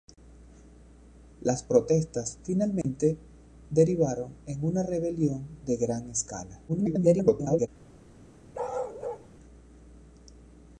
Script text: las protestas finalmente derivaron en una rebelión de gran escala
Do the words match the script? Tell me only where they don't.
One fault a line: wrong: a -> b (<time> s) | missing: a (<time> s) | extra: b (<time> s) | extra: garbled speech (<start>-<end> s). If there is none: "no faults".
extra: garbled speech (6.7-7.7 s)